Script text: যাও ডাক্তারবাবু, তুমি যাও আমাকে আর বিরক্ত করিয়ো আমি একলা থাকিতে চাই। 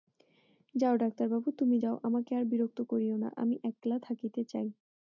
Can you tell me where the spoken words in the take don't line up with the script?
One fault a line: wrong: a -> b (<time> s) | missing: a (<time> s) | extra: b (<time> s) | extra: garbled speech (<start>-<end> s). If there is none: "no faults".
extra: না (3.2 s)